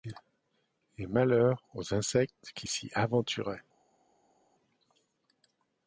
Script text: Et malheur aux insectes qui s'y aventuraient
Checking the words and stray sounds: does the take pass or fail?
pass